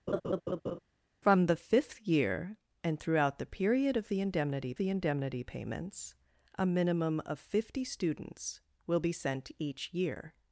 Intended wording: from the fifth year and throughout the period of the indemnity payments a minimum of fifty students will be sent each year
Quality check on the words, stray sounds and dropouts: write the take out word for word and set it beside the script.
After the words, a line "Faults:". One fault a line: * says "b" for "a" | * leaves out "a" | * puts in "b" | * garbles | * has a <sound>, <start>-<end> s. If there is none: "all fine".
from the fifth year and throughout the period of the indemnity the indemnity payments a minimum of fifty students will be sent each year
Faults:
* has a laugh, 0.1-0.8 s
* puts in "the indemnity"